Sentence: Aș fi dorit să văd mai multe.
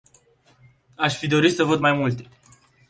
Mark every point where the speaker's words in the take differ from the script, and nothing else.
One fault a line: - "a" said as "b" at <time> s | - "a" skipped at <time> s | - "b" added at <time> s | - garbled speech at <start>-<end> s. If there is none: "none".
none